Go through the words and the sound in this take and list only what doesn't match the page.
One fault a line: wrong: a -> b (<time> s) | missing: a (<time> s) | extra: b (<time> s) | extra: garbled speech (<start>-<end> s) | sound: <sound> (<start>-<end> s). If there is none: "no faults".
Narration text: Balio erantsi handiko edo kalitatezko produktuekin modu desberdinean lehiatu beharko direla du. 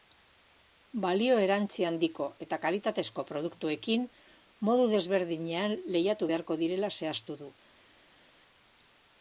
wrong: edo -> eta (2.5 s)
extra: zehaztu (7.0 s)